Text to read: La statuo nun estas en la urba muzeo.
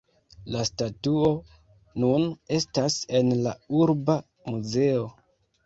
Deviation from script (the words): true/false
false